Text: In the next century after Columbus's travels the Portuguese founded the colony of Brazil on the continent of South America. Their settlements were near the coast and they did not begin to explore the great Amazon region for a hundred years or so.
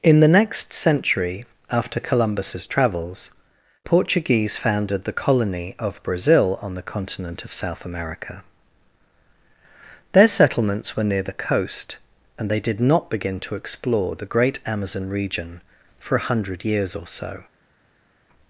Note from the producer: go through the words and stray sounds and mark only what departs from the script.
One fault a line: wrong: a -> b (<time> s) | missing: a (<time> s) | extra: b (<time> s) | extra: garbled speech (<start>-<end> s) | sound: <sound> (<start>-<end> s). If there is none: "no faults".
missing: the (3.3 s)